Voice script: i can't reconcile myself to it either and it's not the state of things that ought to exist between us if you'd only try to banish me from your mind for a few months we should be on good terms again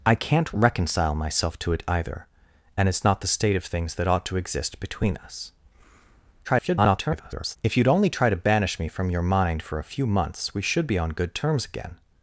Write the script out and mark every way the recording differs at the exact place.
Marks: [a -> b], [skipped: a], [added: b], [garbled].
i can't reconcile myself to it either and it's not the state of things that ought to exist between us [garbled] if you'd only try to banish me from your mind for a few months we should be on good terms again